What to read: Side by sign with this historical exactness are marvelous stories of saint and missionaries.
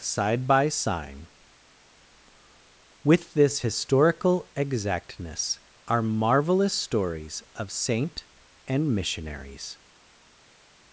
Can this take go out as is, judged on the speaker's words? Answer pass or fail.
pass